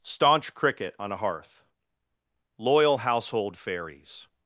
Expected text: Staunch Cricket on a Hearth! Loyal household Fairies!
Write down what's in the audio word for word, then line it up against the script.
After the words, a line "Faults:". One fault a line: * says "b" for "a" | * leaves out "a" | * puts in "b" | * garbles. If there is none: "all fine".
Staunch Cricket on a Hearth! Loyal household Fairies!
Faults:
all fine